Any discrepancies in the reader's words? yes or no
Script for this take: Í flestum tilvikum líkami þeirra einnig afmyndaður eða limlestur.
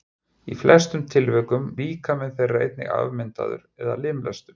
no